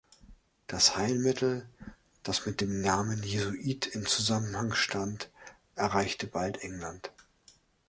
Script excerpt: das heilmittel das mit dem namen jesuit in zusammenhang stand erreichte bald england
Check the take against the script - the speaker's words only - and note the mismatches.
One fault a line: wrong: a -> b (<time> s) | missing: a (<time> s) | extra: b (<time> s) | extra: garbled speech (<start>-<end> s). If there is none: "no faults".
no faults